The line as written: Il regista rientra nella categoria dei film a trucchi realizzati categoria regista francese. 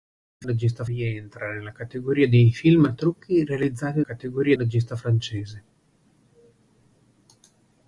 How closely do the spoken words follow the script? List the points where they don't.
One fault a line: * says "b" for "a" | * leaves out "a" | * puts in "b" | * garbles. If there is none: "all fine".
all fine